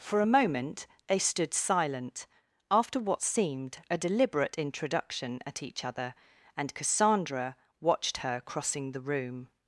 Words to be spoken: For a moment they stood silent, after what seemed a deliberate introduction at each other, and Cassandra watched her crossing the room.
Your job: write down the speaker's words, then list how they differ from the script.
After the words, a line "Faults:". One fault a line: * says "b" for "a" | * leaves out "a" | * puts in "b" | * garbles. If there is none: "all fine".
For a moment they stood silent, after what seemed a deliberate introduction at each other, and Cassandra watched her crossing the room.
Faults:
all fine